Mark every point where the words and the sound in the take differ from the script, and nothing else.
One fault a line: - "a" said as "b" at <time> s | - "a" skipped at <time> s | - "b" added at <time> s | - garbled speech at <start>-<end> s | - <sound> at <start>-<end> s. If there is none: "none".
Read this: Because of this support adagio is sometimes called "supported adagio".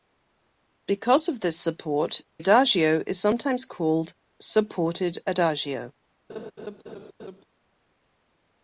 - laugh at 6.3-7.4 s